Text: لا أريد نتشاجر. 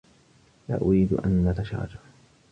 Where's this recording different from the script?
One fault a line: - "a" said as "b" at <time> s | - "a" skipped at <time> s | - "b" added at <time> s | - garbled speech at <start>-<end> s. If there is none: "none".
- "أن" added at 1.1 s